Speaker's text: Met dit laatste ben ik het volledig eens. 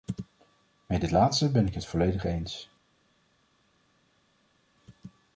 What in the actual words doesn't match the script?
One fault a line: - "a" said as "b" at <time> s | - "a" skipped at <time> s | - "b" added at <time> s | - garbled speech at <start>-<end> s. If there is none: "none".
none